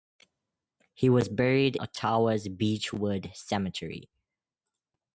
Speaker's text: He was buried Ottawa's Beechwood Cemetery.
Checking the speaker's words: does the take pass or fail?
pass